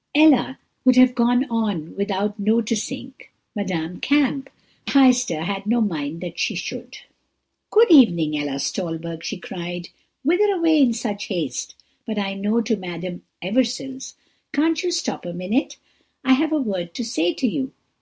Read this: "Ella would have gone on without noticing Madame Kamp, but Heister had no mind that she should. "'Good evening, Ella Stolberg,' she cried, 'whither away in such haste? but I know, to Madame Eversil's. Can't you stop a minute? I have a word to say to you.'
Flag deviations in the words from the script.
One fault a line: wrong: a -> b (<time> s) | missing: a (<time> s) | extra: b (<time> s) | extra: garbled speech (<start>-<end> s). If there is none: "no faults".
missing: but (4.5 s)